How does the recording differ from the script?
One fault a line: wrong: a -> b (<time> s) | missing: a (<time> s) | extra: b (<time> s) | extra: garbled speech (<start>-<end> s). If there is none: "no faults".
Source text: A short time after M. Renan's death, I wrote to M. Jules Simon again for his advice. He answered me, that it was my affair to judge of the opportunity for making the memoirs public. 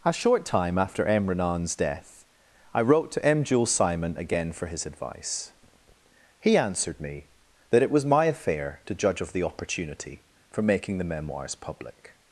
no faults